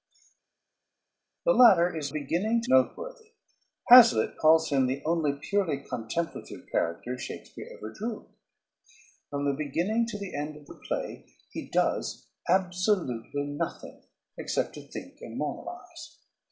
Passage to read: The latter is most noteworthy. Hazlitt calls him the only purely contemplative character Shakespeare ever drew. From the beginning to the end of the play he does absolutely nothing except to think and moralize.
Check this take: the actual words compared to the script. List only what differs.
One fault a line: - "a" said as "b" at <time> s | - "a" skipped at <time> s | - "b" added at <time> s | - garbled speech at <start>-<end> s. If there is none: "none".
- "most" said as "beginning" at 2.1 s